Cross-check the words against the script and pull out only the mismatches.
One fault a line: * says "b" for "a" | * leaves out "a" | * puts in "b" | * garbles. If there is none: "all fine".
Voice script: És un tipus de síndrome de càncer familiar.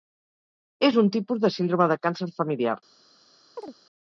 all fine